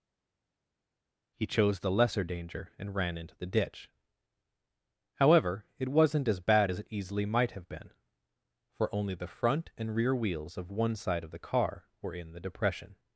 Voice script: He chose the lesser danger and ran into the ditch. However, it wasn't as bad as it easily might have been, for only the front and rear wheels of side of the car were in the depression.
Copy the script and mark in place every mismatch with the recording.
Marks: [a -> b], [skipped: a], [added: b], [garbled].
He chose the lesser danger and ran into the ditch. However, it wasn't as bad as it easily might have been, for only the front and rear wheels of [added: one] side of the car were in the depression.